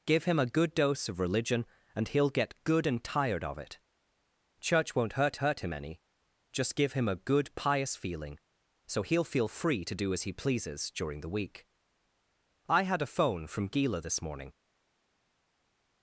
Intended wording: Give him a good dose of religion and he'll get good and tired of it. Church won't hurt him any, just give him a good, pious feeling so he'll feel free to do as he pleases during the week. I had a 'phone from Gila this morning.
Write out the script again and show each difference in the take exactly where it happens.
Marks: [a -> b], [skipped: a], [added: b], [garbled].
Give him a good dose of religion and he'll get good and tired of it. Church won't hurt [added: hurt] him any, just give him a good, pious feeling so he'll feel free to do as he pleases during the week. I had a 'phone from Gila this morning.